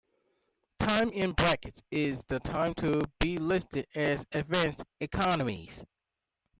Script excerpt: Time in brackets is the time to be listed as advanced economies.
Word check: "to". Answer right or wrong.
right